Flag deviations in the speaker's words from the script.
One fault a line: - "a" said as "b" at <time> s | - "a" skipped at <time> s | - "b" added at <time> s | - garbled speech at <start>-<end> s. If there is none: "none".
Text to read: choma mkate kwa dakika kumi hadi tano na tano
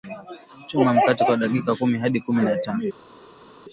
- "tano" said as "kumi" at 2.2 s